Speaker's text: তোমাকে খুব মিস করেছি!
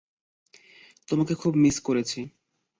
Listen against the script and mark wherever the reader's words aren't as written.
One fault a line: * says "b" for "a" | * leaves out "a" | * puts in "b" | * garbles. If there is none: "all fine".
all fine